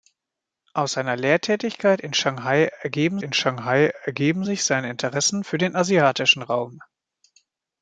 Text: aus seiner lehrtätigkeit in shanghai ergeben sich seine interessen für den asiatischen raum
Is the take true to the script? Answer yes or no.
no